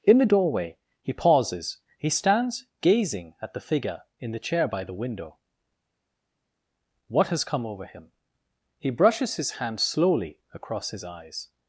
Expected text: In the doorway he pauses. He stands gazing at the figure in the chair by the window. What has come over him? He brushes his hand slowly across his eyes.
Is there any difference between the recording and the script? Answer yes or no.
no